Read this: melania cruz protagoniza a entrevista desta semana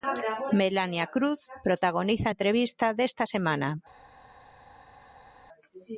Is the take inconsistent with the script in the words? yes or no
no